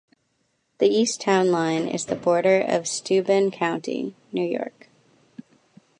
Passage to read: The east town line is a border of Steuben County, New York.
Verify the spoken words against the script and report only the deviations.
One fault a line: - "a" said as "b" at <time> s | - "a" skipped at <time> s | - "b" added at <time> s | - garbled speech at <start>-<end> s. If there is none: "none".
- "a" said as "the" at 2.0 s